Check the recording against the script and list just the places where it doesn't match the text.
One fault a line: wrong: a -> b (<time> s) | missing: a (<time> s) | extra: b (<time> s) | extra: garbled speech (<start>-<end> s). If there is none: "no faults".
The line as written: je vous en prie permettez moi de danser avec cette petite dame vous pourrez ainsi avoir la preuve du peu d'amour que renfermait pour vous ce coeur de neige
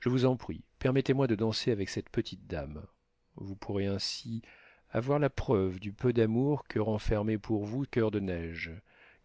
missing: ce (7.8 s)